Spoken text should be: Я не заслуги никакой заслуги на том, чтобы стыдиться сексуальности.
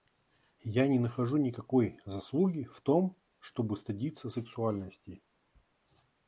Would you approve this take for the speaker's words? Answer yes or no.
no